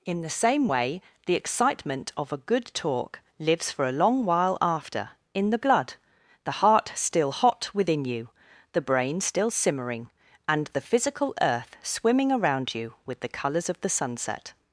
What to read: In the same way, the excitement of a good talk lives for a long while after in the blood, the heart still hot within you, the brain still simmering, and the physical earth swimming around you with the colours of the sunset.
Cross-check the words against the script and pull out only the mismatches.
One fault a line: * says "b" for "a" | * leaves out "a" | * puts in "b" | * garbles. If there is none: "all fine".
all fine